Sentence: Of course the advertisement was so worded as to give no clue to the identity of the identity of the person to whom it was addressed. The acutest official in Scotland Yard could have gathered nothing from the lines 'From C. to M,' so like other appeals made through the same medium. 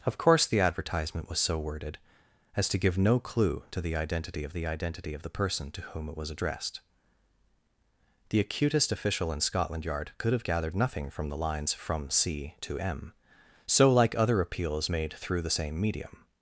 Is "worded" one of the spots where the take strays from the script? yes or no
no